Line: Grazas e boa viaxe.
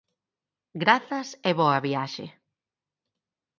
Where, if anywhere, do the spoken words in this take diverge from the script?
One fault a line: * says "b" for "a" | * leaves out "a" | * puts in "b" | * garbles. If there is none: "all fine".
all fine